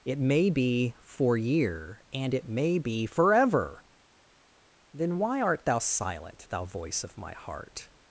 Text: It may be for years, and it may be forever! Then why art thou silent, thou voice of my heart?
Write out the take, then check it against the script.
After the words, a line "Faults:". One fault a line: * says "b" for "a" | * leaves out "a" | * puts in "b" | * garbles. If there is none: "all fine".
It may be for year, and it may be forever! Then why art thou silent, thou voice of my heart?
Faults:
* says "year" for "years"